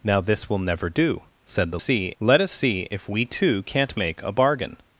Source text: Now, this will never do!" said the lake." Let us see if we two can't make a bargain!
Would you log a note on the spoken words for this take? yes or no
yes